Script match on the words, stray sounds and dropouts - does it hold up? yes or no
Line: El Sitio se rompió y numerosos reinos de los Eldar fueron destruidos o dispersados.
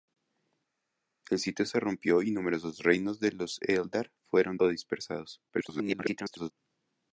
no